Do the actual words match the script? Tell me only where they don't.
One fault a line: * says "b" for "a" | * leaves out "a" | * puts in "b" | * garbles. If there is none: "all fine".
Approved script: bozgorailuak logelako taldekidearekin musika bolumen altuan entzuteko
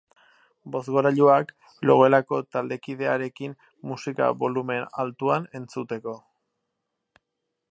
all fine